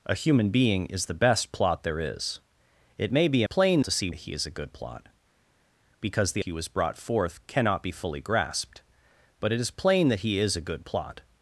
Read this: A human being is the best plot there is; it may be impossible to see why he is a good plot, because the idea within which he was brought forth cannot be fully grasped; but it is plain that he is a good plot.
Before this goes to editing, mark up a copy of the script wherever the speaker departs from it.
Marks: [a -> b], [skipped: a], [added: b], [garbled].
A human being is the best plot there is; it may be [impossible -> plain] to see [skipped: why] he is a good plot, because the [skipped: idea within which] he was brought forth cannot be fully grasped; but it is plain that he is a good plot.